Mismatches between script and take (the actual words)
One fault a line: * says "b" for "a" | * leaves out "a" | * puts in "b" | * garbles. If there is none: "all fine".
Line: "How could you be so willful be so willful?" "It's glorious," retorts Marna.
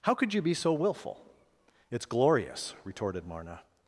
* leaves out "be so willful"
* says "retorted" for "retorts"